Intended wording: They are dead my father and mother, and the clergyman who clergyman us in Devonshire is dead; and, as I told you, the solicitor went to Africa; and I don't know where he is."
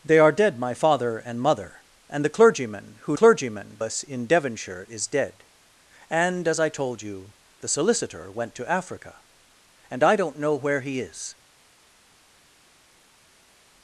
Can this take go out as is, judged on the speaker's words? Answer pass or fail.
pass